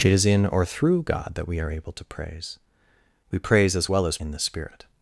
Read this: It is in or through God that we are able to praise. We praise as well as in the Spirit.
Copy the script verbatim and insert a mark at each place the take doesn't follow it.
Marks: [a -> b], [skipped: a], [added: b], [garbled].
It is in or through God that we are able to praise. We praise as well as in the Spirit.